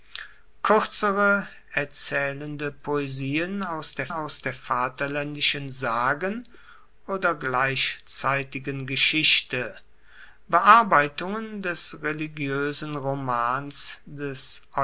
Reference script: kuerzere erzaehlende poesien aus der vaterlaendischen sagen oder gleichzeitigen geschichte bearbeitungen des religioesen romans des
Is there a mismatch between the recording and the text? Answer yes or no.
yes